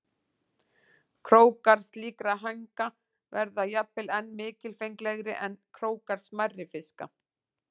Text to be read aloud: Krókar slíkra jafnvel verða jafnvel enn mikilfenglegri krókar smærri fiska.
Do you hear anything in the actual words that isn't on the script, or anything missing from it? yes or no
yes